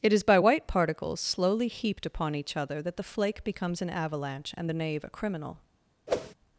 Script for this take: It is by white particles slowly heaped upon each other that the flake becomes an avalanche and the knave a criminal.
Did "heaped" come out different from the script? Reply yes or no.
no